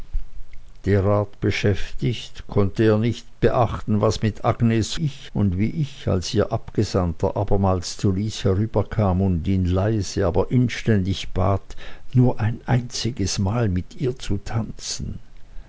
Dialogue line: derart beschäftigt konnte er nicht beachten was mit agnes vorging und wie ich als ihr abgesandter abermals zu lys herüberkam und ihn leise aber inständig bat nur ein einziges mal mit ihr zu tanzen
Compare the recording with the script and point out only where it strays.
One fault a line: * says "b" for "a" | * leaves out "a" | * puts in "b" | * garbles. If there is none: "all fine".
* says "ich" for "vorging"